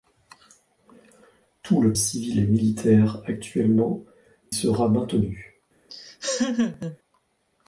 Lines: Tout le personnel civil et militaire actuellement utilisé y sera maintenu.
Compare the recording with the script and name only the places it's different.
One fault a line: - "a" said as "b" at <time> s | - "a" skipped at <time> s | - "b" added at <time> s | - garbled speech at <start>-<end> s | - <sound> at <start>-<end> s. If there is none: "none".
- "personnel" skipped at 1.9 s
- "utilisé y" skipped at 4.0 s
- laugh at 5.9-7.0 s